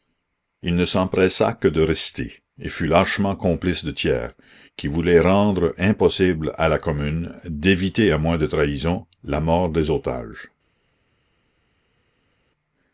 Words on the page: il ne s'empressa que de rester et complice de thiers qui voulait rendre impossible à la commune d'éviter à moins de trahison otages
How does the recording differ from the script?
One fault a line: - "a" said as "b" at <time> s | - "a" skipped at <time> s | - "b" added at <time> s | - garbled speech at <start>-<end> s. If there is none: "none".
- "fut lâchement" added at 2.7 s
- "la mort des" added at 9.2 s